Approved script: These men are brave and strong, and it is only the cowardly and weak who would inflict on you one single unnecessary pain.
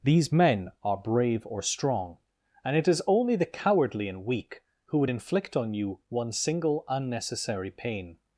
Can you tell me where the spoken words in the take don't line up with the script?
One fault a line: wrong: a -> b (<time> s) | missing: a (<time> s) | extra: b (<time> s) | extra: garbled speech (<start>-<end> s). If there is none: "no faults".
wrong: and -> or (1.4 s)